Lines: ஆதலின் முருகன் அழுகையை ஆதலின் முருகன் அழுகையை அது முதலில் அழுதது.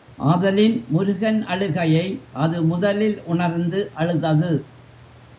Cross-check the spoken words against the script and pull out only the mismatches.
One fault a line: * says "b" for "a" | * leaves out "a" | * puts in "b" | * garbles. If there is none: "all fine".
* leaves out "ஆதலின் முருகன் அழுகையை"
* puts in "உணர்ந்து"